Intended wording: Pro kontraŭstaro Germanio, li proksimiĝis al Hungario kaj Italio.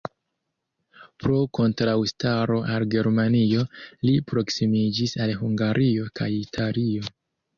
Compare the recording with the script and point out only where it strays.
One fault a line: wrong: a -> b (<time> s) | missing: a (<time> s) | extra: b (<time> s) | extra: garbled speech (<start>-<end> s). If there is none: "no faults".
extra: al (2.8 s)